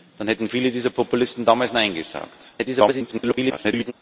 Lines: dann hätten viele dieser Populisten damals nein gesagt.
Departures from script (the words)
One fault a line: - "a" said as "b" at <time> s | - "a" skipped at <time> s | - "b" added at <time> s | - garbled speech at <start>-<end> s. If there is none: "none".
- garbled speech at 2.6-3.9 s